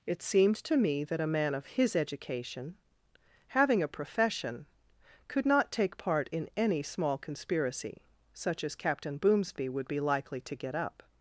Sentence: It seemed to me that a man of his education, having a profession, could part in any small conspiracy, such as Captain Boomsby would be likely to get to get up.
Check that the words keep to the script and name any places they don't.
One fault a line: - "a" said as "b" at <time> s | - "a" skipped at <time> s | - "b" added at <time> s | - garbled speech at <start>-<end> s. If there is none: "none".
- "not take" added at 5.4 s
- "to get" skipped at 10.7 s